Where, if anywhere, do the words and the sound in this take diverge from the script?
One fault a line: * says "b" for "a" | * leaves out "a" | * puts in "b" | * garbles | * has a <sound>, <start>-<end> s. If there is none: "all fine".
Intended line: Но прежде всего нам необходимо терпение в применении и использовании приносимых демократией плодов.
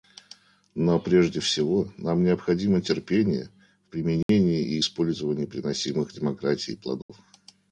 * has a dropout, 4.2-4.3 s
* has a dropout, 7.0-7.1 s